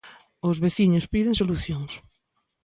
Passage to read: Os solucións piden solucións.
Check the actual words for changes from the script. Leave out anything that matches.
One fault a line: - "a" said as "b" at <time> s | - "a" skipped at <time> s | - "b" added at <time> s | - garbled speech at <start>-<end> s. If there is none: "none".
- "solucións" said as "veciños" at 0.7 s